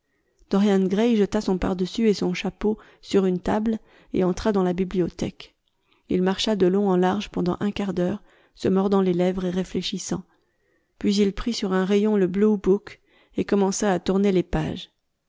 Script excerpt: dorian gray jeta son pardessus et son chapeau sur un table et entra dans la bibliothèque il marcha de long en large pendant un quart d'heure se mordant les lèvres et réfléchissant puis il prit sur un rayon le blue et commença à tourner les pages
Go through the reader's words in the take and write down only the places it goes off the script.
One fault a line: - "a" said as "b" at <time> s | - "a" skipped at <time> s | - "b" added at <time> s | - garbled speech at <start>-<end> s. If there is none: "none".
- "un" said as "une" at 3.3 s
- "book" added at 12.6 s